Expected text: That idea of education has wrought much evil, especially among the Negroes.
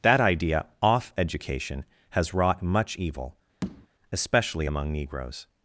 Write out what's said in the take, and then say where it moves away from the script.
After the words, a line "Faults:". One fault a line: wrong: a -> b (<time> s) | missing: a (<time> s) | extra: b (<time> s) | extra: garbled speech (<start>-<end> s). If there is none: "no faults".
That idea off education has wrought much evil, especially among Negroes.
Faults:
wrong: of -> off (0.8 s)
missing: the (4.9 s)